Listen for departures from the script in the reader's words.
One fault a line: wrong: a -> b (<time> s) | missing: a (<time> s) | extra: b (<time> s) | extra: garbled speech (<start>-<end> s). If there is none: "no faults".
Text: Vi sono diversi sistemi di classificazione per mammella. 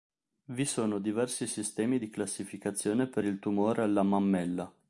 extra: il tumore alla (3.2 s)